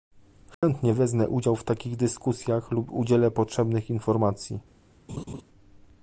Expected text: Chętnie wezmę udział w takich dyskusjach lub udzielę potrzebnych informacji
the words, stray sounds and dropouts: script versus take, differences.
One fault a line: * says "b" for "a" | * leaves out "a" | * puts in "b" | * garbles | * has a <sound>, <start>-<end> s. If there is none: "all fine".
* has a dropout, 0.5-0.6 s
* has a laugh, 5.1-5.4 s